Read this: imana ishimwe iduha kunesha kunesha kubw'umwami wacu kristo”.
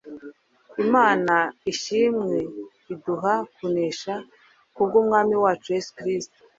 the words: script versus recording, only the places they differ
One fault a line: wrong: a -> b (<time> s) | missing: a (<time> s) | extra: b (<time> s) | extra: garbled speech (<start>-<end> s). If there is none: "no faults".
missing: kunesha (4.1 s)
extra: yesu (5.8 s)